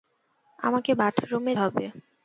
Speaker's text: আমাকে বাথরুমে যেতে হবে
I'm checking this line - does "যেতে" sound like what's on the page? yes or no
no